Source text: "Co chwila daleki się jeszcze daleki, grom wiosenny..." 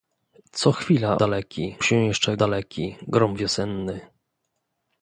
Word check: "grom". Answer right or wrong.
right